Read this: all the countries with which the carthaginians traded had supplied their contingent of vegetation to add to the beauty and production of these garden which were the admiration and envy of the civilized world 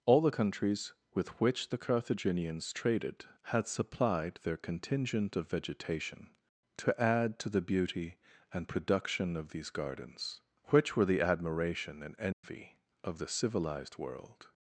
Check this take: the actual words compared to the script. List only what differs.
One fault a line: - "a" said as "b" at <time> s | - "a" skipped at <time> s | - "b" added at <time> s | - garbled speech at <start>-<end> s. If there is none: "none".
- "garden" said as "gardens" at 9.7 s